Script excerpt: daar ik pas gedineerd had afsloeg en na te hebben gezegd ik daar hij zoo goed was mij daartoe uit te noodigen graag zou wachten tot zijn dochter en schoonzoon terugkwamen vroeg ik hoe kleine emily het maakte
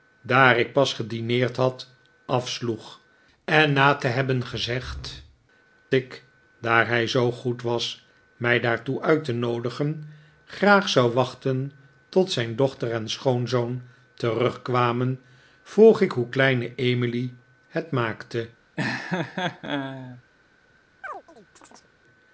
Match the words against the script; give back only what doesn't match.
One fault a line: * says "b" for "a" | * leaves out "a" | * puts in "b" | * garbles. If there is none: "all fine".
all fine